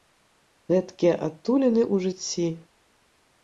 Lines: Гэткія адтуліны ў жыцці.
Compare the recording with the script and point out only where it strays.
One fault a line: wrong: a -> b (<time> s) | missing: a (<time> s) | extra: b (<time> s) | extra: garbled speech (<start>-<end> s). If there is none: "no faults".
no faults